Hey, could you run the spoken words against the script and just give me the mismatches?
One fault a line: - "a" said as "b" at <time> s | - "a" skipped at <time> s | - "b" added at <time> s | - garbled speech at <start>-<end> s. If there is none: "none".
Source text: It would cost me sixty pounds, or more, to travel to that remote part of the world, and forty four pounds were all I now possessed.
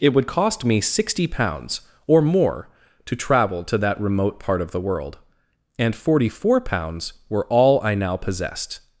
none